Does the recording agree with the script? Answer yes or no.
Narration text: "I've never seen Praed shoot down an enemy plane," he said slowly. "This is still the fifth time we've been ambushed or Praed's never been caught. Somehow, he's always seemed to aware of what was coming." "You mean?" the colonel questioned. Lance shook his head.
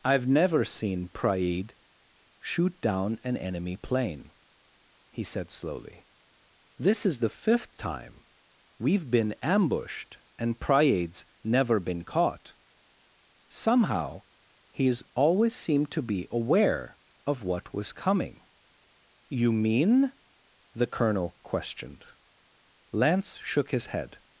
no